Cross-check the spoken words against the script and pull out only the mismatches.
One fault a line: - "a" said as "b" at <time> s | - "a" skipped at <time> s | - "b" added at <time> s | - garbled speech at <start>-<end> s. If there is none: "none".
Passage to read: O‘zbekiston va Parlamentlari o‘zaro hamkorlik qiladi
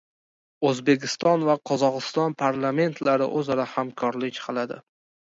- "Qozog‘iston" added at 1.7 s